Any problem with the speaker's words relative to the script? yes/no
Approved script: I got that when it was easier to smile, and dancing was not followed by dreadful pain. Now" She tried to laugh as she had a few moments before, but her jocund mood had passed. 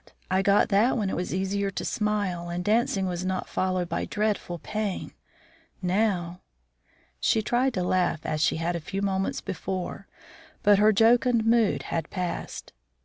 no